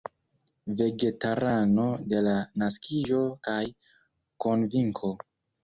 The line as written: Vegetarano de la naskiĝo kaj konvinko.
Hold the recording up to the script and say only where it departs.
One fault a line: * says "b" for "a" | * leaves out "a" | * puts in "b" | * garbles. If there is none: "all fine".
all fine